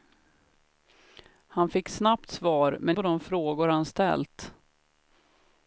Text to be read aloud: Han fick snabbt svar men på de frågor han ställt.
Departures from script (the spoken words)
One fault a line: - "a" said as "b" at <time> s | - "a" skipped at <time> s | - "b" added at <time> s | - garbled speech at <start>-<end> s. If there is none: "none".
none